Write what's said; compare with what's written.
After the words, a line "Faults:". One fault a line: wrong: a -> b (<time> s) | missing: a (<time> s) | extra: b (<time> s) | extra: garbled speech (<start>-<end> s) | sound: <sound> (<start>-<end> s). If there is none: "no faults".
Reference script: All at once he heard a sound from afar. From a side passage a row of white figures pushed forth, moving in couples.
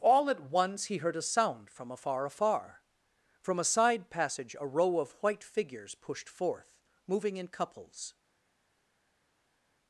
All at once he heard a sound from afar afar. From a side passage a row of white figures pushed forth, moving in couples.
Faults:
extra: afar (2.2 s)